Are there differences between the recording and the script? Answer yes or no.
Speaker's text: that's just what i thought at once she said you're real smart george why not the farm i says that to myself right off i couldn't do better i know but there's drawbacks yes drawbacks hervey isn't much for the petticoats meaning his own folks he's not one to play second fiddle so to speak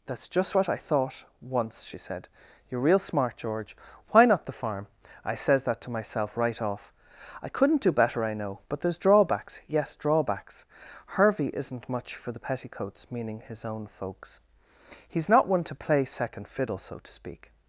yes